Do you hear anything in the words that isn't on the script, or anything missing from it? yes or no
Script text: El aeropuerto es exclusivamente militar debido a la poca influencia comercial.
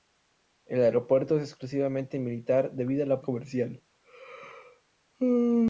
yes